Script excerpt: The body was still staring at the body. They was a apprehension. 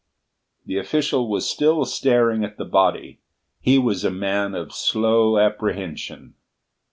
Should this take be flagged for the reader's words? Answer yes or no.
yes